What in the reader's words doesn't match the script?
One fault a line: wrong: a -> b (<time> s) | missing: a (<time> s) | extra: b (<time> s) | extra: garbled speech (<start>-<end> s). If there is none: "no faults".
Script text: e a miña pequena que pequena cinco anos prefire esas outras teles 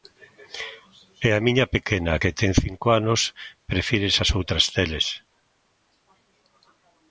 wrong: pequena -> ten (2.4 s)